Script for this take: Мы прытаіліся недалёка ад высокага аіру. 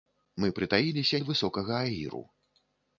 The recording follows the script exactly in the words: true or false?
false